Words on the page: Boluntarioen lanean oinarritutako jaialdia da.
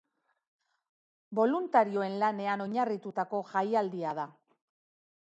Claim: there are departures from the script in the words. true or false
false